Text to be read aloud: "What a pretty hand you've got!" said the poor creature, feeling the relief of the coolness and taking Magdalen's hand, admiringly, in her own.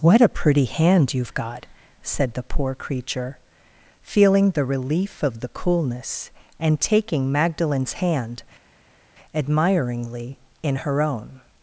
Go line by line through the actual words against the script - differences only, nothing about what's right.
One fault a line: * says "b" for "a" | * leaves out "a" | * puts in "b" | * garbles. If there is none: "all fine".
all fine